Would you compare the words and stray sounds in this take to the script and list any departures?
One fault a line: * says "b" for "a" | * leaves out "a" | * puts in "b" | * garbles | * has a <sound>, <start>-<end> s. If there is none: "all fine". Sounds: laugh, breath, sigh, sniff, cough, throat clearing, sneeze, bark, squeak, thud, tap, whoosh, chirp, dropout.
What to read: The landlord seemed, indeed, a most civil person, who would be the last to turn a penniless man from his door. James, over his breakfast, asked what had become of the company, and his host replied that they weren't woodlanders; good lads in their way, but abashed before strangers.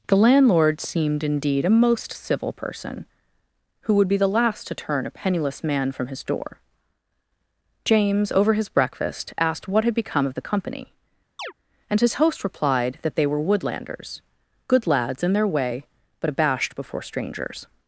* has a chirp, 11.4-11.5 s
* says "were" for "weren't"